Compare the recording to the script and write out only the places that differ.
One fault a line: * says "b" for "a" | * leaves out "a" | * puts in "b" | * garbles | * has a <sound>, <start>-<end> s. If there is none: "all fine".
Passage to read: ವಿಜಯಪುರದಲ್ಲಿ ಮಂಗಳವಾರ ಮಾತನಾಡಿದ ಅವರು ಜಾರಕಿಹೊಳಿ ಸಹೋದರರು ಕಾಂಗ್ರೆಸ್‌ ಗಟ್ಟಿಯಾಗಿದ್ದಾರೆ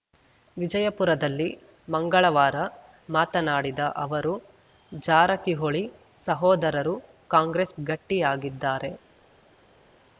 all fine